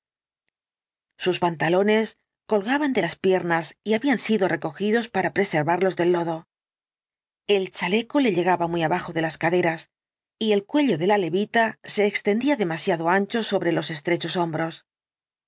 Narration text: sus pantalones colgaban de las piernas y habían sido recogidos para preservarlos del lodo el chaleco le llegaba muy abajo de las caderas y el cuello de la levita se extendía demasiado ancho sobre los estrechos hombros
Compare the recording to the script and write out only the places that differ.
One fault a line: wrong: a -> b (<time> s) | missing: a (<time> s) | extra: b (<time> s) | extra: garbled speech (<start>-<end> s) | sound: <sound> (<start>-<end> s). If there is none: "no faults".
no faults